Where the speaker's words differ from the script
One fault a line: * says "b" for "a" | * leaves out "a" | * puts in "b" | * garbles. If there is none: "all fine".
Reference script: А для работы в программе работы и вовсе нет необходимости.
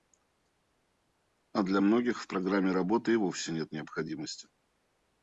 * says "многих" for "работы"